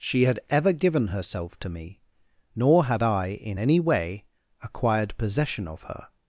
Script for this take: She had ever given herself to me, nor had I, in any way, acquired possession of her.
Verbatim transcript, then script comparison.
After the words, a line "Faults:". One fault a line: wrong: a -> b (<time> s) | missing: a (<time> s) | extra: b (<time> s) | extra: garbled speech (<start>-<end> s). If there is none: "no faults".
She had ever given herself to me, nor had I, in any way, acquired possession of her.
Faults:
no faults